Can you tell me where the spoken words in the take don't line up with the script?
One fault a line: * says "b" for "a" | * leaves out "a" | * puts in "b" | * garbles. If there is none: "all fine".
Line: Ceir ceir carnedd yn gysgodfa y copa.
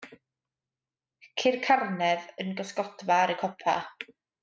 * leaves out "ceir"
* puts in "ar"